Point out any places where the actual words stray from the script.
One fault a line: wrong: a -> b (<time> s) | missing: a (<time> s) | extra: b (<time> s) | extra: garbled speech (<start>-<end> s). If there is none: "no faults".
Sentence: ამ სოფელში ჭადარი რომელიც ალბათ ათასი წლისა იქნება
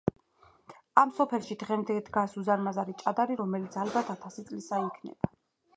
extra: დღემდე დგას უზარმაზარი (1.6 s)